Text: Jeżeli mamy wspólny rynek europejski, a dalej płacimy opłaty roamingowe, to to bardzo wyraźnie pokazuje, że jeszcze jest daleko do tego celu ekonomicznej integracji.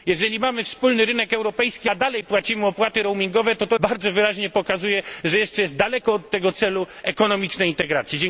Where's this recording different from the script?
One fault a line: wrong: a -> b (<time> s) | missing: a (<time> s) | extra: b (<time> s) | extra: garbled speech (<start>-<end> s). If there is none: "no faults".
no faults